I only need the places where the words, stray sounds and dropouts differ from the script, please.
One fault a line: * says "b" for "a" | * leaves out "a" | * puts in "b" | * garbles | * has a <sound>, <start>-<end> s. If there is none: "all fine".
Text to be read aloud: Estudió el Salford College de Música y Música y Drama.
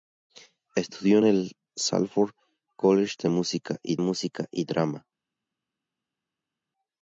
all fine